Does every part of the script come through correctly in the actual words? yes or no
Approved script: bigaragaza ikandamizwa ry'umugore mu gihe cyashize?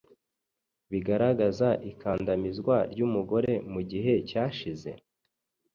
yes